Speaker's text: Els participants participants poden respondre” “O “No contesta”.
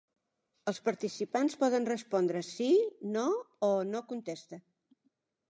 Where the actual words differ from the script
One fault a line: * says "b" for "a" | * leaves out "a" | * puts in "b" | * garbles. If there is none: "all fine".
* leaves out "participants"
* puts in "Sí No"